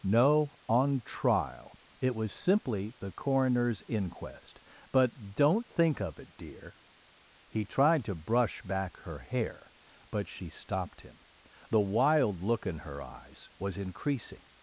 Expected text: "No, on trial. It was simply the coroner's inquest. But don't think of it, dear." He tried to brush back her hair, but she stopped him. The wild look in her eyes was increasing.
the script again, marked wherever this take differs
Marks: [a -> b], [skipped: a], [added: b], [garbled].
"No, on trial. It was simply the coroner's inquest. But don't think of it, dear." He tried to brush back her hair, but she stopped him. The wild look in her eyes was increasing.